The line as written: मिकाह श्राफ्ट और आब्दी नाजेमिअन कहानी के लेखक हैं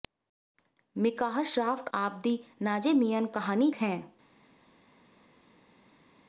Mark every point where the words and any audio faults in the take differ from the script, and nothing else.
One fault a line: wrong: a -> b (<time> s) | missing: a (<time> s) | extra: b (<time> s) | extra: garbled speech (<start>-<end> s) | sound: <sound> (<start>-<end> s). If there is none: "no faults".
missing: और (1.9 s)
missing: के लेखक (3.7 s)